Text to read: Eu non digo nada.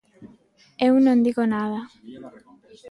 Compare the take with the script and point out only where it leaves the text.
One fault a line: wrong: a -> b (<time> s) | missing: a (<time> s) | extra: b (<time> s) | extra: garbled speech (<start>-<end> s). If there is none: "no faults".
no faults